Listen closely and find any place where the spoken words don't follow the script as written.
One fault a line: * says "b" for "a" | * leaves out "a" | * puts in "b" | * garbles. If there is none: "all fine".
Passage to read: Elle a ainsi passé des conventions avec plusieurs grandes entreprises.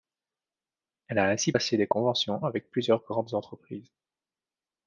all fine